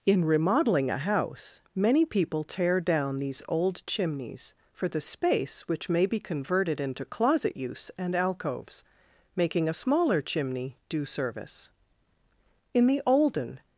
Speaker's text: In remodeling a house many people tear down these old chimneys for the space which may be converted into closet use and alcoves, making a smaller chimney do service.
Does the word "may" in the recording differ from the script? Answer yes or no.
no